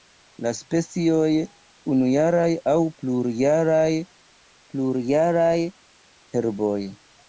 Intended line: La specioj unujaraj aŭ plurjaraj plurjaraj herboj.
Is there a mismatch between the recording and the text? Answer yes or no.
no